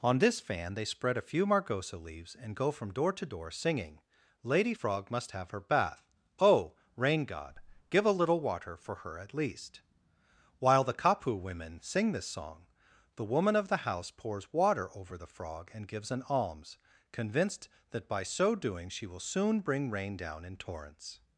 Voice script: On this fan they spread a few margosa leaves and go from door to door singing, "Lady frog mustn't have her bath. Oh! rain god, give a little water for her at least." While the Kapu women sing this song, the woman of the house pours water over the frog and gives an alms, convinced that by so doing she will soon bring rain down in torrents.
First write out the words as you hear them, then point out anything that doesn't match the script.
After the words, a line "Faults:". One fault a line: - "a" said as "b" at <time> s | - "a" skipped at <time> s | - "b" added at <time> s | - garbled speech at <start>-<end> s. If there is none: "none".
On this fan they spread a few margosa leaves and go from door to door singing, "Lady frog must have her bath. Oh! rain god, give a little water for her at least." While the Kapu women sing this song, the woman of the house pours water over the frog and gives an alms, convinced that by so doing she will soon bring rain down in torrents.
Faults:
- "mustn't" said as "must" at 5.1 s